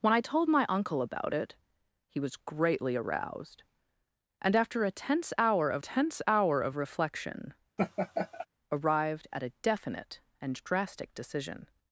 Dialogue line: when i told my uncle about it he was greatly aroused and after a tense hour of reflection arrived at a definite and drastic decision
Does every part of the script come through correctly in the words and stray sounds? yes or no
no